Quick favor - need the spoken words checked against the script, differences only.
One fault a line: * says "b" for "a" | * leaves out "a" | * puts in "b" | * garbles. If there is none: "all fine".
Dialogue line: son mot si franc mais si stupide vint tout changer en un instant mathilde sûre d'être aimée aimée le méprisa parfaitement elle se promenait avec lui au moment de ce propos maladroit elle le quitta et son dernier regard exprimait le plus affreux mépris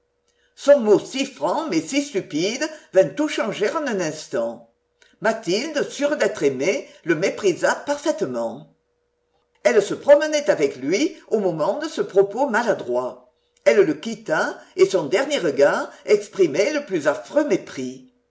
* leaves out "aimée"